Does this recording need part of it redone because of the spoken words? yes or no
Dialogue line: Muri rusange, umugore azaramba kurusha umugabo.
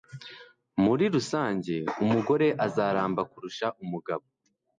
no